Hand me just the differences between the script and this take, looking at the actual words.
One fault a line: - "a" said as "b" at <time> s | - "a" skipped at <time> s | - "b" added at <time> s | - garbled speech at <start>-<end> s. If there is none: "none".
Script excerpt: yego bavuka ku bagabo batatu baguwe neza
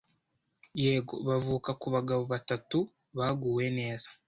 none